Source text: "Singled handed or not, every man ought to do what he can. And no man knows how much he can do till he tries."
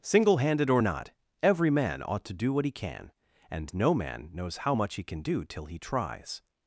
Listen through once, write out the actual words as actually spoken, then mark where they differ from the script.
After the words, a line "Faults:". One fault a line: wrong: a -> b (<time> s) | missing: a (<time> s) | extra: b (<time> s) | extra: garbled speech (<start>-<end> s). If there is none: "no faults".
"Single handed or not, every man ought to do what he can. And no man knows how much he can do till he tries."
Faults:
wrong: Singled -> Single (0.0 s)